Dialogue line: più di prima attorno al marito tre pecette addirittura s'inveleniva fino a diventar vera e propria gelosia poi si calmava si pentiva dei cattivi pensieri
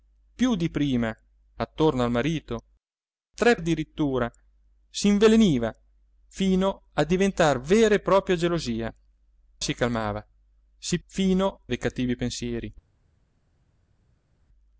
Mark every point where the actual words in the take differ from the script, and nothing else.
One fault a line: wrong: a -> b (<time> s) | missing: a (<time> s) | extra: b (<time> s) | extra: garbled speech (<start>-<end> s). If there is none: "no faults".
missing: pecette (3.6 s)
missing: poi (8.9 s)
wrong: pentiva -> fino (11.0 s)